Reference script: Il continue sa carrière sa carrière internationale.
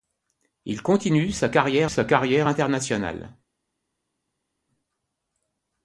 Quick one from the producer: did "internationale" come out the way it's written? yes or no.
yes